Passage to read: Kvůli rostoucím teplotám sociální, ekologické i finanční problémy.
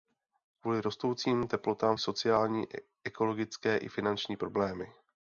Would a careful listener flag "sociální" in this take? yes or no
no